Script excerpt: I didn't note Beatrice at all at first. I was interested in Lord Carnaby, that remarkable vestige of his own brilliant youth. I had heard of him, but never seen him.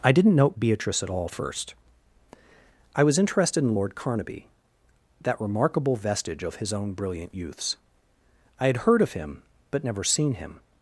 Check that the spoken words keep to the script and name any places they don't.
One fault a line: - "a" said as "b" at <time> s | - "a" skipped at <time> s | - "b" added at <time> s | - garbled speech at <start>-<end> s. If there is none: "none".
- "at" skipped at 1.3 s
- "youth" said as "youths" at 7.3 s